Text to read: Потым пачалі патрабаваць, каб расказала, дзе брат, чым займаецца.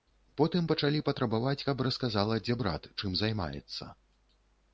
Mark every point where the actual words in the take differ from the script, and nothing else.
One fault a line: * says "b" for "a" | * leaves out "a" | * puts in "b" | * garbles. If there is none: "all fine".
all fine